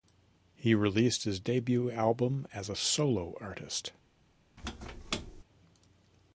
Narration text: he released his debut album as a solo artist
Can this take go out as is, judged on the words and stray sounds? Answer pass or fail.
fail